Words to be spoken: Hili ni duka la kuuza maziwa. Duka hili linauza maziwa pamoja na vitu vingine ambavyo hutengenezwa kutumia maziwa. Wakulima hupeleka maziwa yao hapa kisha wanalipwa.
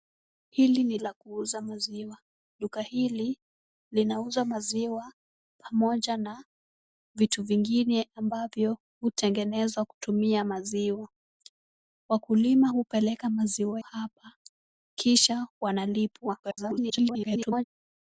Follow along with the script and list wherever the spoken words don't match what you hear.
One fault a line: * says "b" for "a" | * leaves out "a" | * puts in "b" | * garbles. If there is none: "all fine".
* leaves out "duka"
* leaves out "yao"
* garbles